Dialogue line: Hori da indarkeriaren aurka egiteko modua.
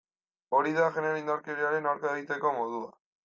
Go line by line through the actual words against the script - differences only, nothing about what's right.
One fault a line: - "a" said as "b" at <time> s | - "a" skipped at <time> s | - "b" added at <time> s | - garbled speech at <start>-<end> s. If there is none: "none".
- "genero" added at 0.9 s